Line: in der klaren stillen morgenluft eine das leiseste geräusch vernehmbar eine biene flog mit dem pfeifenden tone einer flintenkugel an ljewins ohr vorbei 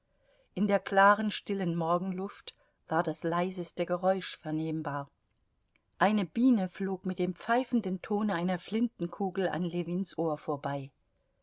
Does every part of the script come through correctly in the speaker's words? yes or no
no